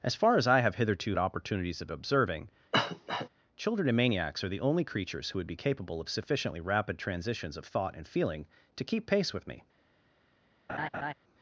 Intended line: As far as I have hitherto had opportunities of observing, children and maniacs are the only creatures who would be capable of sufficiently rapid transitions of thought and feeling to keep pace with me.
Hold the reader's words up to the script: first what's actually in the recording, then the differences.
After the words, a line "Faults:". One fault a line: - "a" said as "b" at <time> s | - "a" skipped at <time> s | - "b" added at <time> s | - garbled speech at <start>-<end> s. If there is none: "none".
As far as I have hitherto opportunities of observing, children and maniacs are the only creatures who would be capable of sufficiently rapid transitions of thought and feeling to keep pace with me.
Faults:
- "had" skipped at 1.1 s